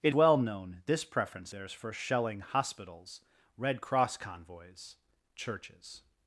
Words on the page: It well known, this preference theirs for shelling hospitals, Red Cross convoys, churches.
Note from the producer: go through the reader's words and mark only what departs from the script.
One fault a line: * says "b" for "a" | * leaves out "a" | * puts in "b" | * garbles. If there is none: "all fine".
all fine